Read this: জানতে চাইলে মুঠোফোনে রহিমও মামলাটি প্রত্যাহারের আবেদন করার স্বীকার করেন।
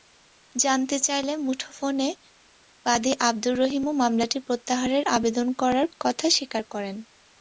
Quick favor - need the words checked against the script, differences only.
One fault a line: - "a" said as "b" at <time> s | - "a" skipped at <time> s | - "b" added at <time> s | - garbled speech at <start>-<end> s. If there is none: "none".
- "বাদী আবদুর" added at 2.9 s
- "কথা" added at 6.0 s